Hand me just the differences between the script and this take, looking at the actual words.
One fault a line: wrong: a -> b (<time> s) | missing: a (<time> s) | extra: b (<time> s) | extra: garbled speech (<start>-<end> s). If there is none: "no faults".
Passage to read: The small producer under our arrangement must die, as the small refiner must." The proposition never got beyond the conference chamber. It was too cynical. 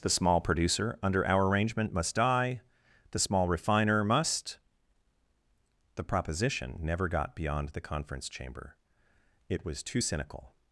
missing: as (2.6 s)